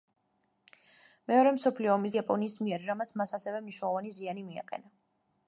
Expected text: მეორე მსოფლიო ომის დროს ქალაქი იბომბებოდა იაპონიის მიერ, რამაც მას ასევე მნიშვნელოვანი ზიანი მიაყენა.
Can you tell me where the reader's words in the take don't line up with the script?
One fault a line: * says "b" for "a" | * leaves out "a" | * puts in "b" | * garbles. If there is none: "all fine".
* leaves out "დროს ქალაქი იბომბებოდა"